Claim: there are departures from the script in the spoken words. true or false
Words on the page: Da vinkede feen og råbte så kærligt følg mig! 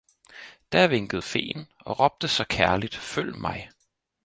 false